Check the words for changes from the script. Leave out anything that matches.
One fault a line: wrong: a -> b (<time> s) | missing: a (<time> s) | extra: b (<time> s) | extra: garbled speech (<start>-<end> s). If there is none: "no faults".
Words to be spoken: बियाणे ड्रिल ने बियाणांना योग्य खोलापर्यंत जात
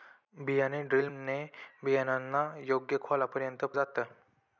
no faults